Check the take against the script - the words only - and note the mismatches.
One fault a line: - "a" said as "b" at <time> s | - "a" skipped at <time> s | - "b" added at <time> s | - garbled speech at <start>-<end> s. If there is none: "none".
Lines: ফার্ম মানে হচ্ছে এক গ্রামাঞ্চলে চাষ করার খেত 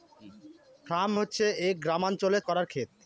- "মানে" skipped at 1.1 s
- "চাষ" skipped at 2.4 s